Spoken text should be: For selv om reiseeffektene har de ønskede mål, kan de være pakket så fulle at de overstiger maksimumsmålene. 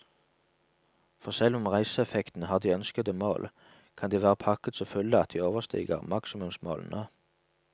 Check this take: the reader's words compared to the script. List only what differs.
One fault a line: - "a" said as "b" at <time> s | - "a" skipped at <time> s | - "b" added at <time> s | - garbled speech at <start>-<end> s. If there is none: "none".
none